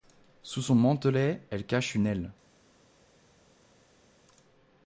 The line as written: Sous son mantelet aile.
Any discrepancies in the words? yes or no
yes